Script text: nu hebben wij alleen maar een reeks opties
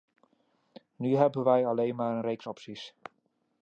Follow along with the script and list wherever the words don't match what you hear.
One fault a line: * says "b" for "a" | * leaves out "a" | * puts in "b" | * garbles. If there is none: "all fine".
all fine